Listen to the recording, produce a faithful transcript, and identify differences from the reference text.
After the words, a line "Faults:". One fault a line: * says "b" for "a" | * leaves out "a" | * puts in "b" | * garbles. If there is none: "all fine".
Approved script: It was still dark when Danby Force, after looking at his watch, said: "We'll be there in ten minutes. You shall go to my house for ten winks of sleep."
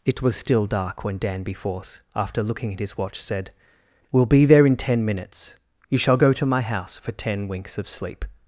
It was still dark when Danby Force, after looking at his watch, said: "We'll be there in ten minutes. You shall go to my house for ten winks of sleep."
Faults:
all fine